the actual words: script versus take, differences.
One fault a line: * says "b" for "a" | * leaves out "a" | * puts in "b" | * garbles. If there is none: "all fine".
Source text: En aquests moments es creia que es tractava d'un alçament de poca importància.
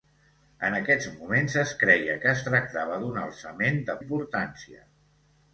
* leaves out "poca"